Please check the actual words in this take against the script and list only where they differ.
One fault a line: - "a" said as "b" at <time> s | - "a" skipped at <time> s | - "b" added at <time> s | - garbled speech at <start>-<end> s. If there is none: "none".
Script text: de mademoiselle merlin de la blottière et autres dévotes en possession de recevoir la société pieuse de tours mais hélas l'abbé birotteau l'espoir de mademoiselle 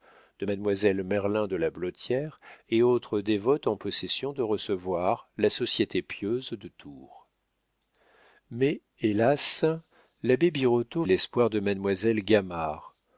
none